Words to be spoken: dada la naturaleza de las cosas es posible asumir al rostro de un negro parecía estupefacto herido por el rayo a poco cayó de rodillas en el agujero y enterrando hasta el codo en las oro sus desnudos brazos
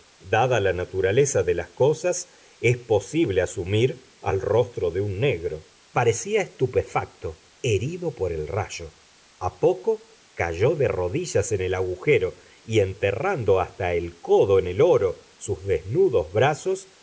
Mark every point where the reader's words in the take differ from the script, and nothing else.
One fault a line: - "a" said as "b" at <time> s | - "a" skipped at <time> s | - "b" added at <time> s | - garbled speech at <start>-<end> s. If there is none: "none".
- "las" said as "el" at 14.7 s